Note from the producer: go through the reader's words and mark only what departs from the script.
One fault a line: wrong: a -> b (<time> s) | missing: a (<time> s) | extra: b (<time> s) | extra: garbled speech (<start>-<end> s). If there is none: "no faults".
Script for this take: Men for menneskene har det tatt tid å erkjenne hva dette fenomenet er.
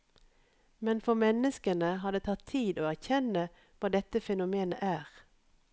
no faults